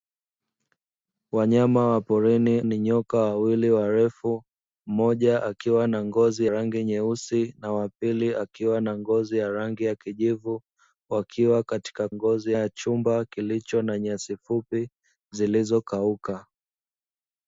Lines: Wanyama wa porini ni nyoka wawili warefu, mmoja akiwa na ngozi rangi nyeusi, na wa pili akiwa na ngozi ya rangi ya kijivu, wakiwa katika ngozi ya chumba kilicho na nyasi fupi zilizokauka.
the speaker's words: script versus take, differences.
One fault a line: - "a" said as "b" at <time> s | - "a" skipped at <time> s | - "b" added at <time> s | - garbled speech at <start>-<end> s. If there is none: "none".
none